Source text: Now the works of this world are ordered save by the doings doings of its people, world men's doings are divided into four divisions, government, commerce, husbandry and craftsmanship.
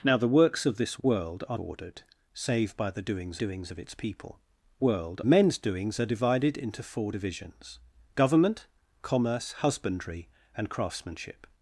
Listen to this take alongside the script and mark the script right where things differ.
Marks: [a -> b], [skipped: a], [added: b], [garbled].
Now the works of this world are ordered save by the doings doings of its people, world men's doings are divided into four divisions, government, commerce, husbandry and craftsmanship.